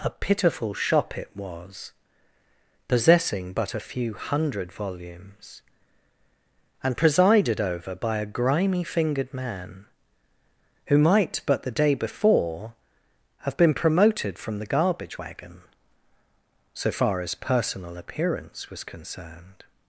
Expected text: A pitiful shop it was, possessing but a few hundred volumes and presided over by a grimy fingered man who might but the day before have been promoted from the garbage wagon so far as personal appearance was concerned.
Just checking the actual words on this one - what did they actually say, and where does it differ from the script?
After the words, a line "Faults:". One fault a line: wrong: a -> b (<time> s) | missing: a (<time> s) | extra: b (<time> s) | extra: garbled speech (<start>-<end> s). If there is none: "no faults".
A pitiful shop it was, possessing but a few hundred volumes and presided over by a grimy fingered man who might but the day before have been promoted from the garbage wagon so far as personal appearance was concerned.
Faults:
no faults